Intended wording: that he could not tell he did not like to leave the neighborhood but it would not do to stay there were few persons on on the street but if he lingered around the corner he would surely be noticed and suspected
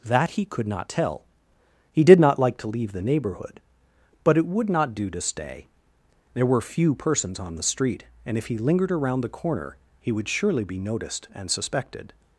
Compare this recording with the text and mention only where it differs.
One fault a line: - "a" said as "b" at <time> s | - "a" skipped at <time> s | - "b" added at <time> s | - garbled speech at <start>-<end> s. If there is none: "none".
- "on" skipped at 7.6 s
- "but" said as "and" at 8.2 s